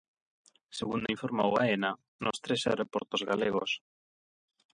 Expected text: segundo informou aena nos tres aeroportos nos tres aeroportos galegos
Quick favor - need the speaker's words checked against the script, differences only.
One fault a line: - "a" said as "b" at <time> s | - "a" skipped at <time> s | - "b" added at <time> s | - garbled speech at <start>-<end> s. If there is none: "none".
- "nos tres aeroportos" skipped at 3.2 s